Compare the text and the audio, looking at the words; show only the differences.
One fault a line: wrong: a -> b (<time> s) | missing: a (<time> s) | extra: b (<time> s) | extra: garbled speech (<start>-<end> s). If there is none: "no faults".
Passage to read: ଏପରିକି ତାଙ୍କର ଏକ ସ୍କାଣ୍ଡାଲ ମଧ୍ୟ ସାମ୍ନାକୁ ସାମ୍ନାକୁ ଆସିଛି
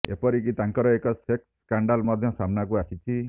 extra: ସେକ୍ସ (1.2 s)
missing: ସାମ୍ନାକୁ (2.8 s)